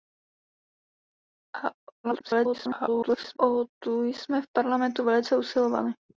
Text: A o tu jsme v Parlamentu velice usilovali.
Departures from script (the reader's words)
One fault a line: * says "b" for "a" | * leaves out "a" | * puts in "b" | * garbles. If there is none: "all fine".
* garbles